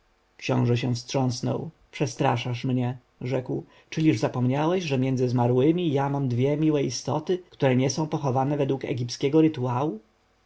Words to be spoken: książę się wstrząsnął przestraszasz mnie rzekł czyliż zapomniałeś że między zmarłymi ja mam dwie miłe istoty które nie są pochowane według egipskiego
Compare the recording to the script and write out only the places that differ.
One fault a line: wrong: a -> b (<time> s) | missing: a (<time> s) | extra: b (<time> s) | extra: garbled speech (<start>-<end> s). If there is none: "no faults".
no faults